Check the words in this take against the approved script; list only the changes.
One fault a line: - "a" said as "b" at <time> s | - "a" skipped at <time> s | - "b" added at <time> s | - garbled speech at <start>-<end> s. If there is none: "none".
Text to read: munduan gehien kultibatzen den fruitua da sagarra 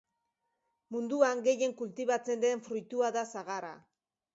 none